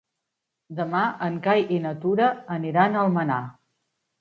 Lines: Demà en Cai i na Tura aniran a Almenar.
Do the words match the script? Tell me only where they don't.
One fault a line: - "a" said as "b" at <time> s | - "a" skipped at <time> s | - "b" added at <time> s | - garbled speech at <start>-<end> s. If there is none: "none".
none